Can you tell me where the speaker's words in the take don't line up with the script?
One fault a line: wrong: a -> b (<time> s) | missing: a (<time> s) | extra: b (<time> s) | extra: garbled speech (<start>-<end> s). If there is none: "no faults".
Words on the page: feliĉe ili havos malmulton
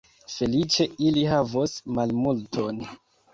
no faults